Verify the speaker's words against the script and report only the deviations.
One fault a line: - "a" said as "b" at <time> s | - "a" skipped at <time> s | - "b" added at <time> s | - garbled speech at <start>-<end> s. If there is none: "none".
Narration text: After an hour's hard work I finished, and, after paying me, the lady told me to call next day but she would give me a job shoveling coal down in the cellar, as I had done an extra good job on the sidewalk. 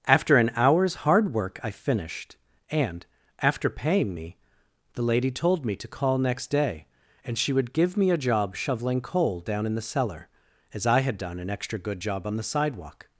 - "but" said as "and" at 7.2 s